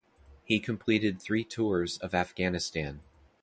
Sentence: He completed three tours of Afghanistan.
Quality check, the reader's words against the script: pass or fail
pass